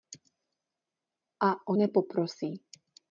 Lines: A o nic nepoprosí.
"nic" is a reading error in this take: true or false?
true